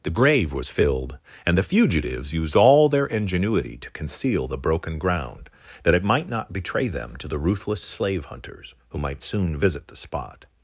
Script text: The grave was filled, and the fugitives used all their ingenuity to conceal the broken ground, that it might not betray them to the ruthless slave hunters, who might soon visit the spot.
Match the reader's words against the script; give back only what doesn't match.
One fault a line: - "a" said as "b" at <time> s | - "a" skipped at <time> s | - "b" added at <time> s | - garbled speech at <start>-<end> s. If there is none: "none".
none